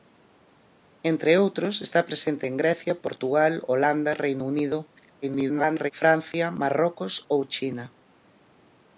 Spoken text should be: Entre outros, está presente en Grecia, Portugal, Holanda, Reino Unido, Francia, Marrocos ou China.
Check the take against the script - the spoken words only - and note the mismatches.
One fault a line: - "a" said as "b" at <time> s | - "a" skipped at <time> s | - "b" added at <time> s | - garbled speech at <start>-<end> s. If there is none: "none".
- garbled speech at 5.2-5.9 s